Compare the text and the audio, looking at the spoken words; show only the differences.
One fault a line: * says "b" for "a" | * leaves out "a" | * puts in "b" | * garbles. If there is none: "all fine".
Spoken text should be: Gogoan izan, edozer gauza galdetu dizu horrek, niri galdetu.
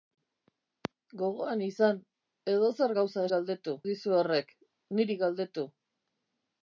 all fine